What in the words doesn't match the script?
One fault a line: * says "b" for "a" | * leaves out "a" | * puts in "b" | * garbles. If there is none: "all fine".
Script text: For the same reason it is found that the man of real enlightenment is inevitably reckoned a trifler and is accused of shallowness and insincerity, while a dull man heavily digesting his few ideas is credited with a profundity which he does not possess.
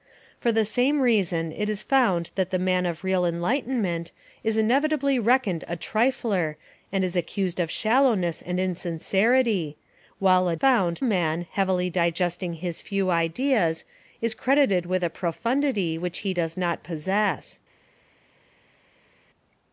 * says "found" for "dull"